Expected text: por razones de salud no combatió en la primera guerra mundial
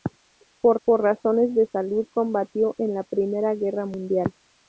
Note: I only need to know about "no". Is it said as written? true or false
false